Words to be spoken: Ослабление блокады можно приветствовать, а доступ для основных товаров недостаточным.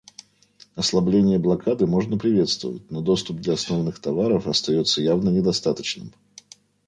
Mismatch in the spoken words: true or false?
true